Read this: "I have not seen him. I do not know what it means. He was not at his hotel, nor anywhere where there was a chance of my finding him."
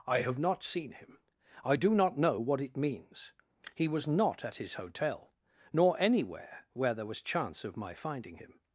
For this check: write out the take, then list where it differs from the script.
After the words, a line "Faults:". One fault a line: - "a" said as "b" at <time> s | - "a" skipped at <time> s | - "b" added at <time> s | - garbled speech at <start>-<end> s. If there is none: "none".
"I have not seen him. I do not know what it means. He was not at his hotel, nor anywhere where there was chance of my finding him."
Faults:
- "a" skipped at 7.2 s